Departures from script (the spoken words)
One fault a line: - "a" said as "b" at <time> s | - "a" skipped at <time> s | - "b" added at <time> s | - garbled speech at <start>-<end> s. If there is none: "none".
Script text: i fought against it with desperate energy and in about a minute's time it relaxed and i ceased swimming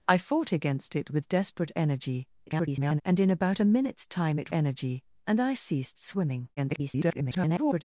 - garbled speech at 2.5-3.0 s
- "relaxed" said as "energy" at 4.5 s
- garbled speech at 6.6-7.8 s